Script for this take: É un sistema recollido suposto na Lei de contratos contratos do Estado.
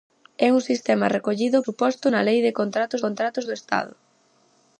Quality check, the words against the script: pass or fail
pass